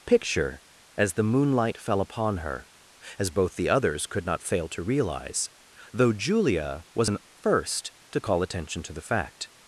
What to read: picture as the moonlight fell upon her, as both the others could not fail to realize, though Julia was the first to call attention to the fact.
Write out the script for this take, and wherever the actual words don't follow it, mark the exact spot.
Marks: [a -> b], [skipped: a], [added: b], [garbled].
picture as the moonlight fell upon her, as both the others could not fail to realize, though Julia was [the -> an] first to call attention to the fact.